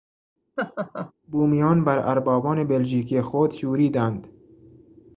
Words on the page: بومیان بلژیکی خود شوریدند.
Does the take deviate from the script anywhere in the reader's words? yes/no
yes